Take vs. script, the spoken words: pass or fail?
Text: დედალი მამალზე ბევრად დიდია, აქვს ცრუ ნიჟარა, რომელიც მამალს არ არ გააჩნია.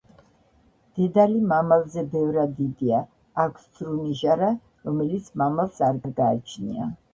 pass